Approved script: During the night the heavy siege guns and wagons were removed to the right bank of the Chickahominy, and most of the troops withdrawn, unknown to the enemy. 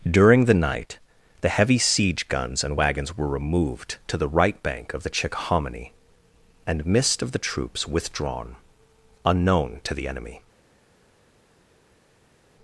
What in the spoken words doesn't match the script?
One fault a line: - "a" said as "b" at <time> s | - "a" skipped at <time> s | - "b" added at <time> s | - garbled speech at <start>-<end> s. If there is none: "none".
- "most" said as "mist" at 6.9 s